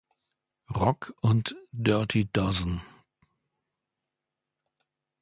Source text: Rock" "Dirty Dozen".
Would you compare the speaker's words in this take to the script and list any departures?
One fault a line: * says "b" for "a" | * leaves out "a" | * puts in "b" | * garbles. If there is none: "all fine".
* puts in "und"